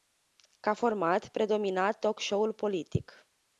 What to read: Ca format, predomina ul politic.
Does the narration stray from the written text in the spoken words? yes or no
yes